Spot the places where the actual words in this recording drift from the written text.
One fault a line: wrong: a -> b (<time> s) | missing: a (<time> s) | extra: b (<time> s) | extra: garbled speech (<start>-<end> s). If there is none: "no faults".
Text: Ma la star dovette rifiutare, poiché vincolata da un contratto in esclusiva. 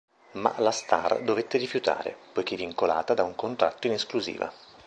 no faults